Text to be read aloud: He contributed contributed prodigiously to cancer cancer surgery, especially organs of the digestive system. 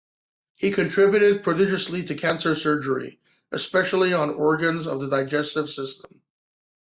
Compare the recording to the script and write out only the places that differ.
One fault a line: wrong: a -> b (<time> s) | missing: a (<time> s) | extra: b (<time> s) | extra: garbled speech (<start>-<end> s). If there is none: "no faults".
missing: contributed (1.4 s)
missing: cancer (2.5 s)
extra: on (4.1 s)